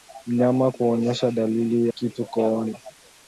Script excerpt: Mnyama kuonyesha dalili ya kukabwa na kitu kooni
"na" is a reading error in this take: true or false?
true